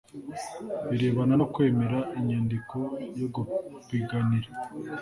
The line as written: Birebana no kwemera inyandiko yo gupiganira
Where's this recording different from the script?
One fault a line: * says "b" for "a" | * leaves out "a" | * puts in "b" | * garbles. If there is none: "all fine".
all fine